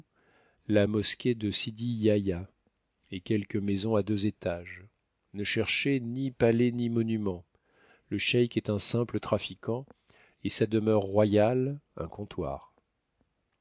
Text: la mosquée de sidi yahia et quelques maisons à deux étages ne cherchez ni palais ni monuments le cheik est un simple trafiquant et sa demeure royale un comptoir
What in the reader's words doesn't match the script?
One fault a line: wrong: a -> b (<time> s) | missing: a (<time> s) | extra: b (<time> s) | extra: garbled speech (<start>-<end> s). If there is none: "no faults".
no faults